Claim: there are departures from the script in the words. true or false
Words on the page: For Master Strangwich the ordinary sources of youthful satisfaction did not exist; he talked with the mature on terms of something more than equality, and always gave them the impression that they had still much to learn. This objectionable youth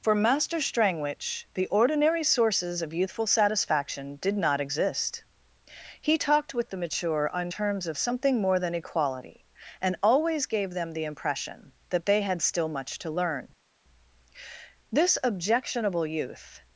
false